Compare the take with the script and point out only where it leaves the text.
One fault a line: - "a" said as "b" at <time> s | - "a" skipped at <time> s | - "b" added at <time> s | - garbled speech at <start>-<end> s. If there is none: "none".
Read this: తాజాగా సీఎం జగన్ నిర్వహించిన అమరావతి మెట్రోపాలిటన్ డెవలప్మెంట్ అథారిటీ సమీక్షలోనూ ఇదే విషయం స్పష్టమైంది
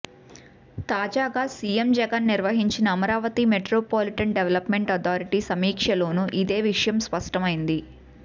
none